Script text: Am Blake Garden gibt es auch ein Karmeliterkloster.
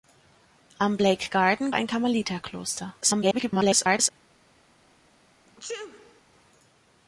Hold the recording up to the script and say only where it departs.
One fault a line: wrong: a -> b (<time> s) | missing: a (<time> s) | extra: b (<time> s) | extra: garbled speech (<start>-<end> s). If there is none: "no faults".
missing: gibt es auch (1.7 s)
extra: garbled speech (3.0-4.1 s)